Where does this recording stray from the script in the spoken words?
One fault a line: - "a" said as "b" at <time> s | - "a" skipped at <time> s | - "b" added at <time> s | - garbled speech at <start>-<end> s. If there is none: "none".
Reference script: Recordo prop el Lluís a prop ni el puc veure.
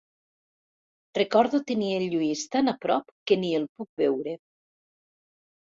- "prop" said as "tenir" at 1.7 s
- "tan" added at 2.6 s
- "que" added at 3.3 s